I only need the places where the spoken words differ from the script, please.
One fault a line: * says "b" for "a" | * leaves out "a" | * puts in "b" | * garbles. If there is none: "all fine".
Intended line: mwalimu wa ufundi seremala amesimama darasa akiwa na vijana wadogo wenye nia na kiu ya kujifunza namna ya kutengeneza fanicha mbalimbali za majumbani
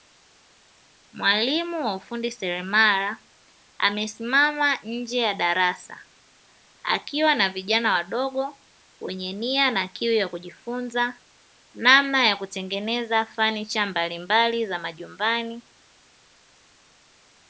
* puts in "nje ya"